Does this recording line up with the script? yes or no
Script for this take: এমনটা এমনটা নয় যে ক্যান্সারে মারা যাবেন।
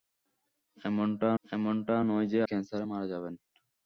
yes